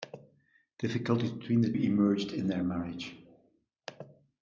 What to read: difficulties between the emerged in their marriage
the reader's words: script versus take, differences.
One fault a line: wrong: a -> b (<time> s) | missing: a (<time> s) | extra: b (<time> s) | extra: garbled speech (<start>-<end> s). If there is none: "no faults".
no faults